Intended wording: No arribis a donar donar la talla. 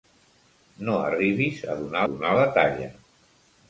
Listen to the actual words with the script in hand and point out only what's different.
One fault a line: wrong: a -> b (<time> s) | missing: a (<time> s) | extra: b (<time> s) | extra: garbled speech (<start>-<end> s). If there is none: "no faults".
no faults